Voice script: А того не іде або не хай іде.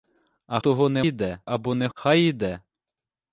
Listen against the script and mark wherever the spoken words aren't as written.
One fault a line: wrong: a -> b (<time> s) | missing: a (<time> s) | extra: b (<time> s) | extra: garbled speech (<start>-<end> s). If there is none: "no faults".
no faults